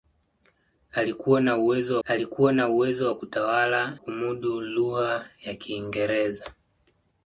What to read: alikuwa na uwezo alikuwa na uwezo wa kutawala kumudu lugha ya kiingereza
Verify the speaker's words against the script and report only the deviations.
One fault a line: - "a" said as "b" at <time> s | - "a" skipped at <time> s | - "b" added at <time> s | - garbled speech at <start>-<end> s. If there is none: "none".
none